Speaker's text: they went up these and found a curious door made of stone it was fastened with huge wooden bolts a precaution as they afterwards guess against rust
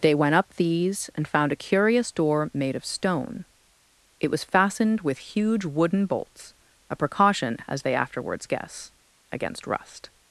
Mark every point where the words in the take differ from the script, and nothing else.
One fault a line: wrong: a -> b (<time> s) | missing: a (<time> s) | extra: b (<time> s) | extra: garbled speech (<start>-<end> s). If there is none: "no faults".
no faults